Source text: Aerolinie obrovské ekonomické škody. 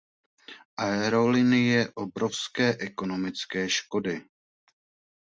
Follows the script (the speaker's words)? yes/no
yes